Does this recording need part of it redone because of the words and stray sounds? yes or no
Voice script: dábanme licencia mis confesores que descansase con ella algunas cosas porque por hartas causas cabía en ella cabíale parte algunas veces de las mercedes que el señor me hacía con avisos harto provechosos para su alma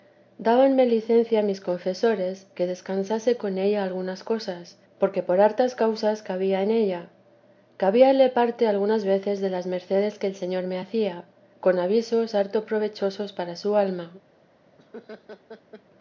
yes